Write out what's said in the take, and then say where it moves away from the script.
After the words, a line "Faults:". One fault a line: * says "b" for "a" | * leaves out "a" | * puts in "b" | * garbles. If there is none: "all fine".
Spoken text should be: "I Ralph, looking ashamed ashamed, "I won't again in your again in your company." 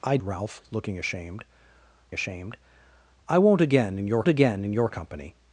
"I Ralph, looking ashamed ashamed, "I won't again in your again in your company."
Faults:
all fine